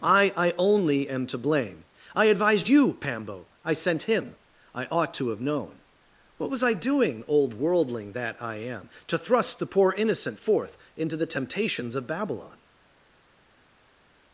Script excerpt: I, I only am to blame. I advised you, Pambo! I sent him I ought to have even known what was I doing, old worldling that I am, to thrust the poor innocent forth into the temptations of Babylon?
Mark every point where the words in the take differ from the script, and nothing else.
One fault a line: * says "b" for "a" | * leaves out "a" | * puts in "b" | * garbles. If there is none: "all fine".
* leaves out "even"